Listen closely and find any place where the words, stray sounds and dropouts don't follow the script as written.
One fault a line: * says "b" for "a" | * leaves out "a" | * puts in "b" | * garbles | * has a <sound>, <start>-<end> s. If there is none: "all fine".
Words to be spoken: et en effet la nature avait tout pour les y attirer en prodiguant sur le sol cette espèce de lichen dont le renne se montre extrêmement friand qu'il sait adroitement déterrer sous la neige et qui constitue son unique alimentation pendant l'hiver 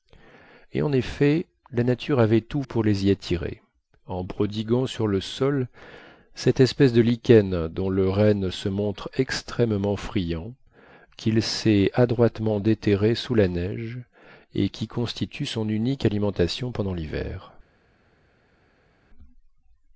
all fine